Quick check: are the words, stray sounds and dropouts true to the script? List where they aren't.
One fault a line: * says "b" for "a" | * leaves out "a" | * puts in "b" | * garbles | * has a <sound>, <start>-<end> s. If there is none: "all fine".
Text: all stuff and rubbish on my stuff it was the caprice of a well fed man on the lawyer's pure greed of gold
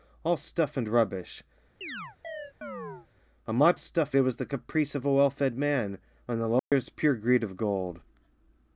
* has a chirp, 1.8-3.1 s
* has a dropout, 6.6-6.7 s